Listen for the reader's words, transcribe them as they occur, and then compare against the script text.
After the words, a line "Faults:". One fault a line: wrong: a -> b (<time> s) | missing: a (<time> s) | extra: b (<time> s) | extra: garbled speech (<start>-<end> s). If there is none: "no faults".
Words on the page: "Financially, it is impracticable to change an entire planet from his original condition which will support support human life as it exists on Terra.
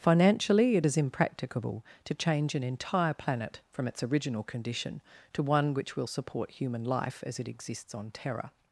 "Financially, it is impracticable to change an entire planet from its original condition to one which will support human life as it exists on Terra.
Faults:
wrong: his -> its (3.9 s)
extra: to one (5.3 s)
missing: support (6.5 s)